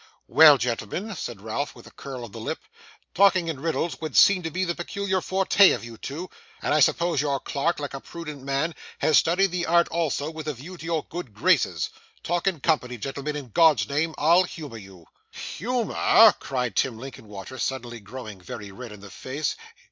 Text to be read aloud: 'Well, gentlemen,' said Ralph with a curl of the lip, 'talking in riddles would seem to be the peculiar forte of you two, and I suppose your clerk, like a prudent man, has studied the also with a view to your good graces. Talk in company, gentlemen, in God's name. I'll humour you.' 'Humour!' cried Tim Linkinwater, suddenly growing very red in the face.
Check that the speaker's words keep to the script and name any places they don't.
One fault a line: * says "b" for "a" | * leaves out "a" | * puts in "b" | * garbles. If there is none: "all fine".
* puts in "art"